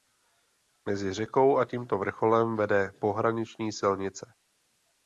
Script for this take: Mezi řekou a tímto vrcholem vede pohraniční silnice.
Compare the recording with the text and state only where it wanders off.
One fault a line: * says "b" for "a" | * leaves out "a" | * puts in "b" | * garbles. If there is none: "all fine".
all fine